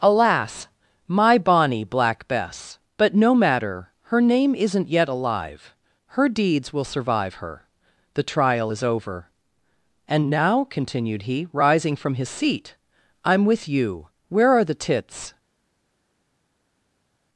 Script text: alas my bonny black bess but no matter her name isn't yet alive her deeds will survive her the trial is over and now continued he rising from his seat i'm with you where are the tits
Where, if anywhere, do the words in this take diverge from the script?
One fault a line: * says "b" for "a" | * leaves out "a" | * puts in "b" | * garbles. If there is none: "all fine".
all fine